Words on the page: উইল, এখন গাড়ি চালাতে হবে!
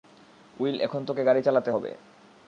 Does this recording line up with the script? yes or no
no